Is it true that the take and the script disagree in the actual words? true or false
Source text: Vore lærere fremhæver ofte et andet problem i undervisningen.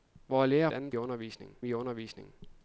true